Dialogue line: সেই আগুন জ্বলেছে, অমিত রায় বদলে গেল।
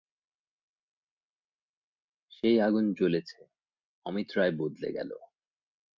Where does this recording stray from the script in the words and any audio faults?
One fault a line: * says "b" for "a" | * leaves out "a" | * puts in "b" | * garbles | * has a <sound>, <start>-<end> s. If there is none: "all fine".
all fine